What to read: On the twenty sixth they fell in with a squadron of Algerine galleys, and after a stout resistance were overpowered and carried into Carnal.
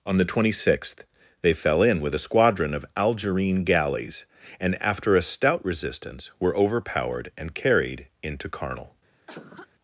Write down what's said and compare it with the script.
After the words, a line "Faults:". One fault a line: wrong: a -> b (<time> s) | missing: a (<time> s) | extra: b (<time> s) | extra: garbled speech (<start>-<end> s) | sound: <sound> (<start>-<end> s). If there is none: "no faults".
On the twenty sixth they fell in with a squadron of Algerine galleys, and after a stout resistance were overpowered and carried into Carnal.
Faults:
sound: cough (9.3-9.7 s)